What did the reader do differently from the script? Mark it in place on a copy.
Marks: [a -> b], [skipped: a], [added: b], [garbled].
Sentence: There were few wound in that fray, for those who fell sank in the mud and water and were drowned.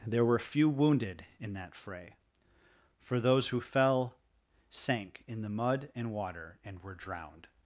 There were few [wound -> wounded] in that fray, for those who fell sank in the mud and water and were drowned.